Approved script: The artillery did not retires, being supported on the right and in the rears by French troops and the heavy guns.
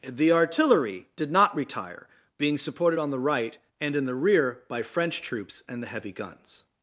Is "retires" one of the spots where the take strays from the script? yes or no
yes